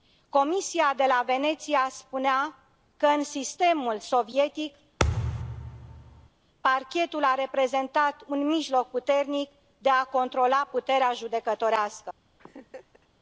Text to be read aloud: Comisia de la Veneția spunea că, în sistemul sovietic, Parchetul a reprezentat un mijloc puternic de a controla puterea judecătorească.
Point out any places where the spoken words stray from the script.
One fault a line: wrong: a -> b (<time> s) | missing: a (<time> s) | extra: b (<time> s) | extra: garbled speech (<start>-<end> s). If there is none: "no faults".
no faults